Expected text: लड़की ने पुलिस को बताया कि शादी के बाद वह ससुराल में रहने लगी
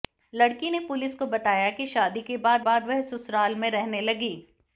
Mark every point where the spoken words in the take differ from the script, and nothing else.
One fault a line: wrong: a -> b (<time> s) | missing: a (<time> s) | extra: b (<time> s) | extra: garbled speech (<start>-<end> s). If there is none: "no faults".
extra: बाद (2.6 s)